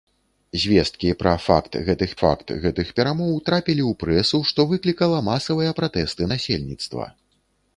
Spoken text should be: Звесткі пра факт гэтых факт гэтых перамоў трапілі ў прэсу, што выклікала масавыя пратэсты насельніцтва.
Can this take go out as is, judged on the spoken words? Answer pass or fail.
pass